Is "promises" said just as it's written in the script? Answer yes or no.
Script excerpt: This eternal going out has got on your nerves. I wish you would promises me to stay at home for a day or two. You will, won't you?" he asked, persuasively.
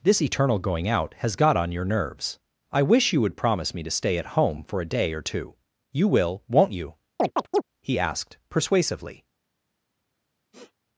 no